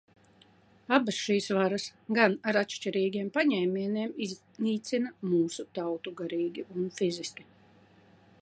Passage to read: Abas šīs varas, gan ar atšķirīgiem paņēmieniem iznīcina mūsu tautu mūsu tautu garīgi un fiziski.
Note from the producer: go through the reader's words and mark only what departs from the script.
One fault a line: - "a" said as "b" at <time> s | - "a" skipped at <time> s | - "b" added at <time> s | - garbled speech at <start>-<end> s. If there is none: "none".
- "mūsu tautu" skipped at 6.2 s